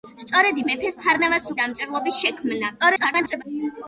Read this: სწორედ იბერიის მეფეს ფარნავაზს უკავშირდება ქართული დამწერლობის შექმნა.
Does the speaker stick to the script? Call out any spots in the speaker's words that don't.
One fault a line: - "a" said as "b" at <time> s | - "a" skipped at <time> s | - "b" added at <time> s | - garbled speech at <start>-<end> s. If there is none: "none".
- "იბერიის" skipped at 0.6 s
- "უკავშირდება ქართული" skipped at 1.5 s
- garbled speech at 2.8-3.4 s